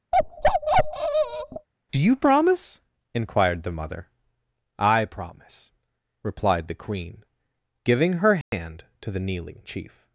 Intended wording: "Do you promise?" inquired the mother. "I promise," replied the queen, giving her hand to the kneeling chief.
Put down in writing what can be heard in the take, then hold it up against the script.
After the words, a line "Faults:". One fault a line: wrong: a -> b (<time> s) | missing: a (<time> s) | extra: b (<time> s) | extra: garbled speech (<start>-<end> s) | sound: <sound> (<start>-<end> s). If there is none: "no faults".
"Do you promise?" inquired the mother. "I promise," replied the queen, giving her hand to the kneeling chief.
Faults:
sound: bark (0.1-1.7 s)
sound: dropout (8.4-8.5 s)